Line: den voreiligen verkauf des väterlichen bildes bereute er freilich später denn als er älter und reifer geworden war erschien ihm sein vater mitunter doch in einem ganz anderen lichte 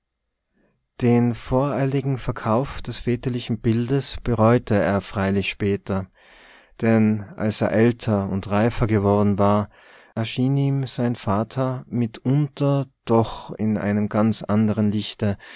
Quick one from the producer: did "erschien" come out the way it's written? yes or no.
yes